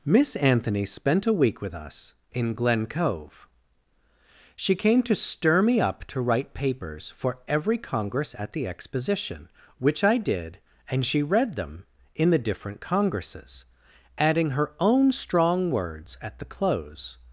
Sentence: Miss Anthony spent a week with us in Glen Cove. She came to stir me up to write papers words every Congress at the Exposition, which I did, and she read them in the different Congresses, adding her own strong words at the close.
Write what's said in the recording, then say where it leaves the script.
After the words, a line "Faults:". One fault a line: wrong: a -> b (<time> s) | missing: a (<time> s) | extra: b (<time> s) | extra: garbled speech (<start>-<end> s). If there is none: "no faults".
Miss Anthony spent a week with us in Glen Cove. She came to stir me up to write papers for every Congress at the Exposition, which I did, and she read them in the different Congresses, adding her own strong words at the close.
Faults:
wrong: words -> for (7.2 s)